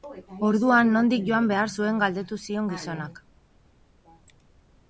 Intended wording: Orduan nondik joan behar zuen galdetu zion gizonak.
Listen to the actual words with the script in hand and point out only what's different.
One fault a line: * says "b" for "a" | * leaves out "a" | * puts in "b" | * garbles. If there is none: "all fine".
all fine